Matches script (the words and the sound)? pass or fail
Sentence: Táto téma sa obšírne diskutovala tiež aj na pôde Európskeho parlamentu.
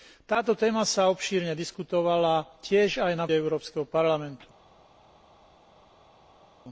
fail